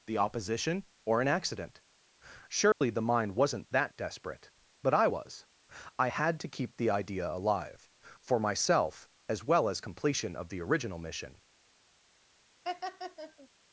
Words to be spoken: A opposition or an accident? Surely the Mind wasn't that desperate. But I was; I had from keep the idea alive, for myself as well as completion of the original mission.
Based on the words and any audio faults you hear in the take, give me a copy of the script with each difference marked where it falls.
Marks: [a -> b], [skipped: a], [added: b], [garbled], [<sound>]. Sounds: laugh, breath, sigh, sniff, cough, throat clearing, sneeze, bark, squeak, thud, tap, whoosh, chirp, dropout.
[A -> The] opposition or an accident? Surely [dropout] the Mind wasn't that desperate. But I was; I had [from -> to] keep the idea alive, for myself as well as completion of the original mission. [laugh]